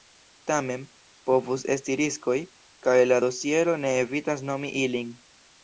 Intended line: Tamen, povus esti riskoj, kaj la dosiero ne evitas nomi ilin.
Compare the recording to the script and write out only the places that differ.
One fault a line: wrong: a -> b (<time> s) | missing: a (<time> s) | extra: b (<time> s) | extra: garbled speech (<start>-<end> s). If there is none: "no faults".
no faults